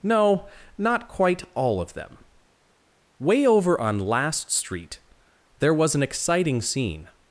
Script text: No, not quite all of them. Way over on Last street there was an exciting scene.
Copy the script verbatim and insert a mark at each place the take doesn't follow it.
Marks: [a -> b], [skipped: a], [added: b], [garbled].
No, not quite all of them. Way over on Last street there was an exciting scene.